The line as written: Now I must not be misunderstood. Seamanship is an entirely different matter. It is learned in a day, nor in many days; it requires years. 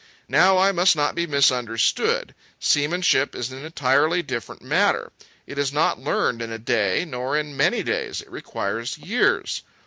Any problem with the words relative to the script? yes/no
yes